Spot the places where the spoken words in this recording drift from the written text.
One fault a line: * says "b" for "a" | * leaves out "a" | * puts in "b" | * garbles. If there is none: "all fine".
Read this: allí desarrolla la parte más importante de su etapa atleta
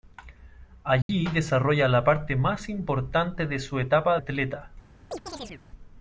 all fine